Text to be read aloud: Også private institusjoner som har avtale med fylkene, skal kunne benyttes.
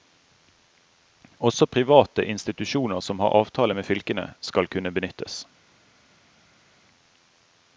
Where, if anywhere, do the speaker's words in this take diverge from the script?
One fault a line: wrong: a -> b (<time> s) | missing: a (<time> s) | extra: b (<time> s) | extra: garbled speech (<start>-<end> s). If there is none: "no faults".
no faults